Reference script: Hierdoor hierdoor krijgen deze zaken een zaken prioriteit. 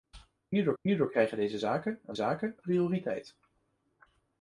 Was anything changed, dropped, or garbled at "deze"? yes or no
no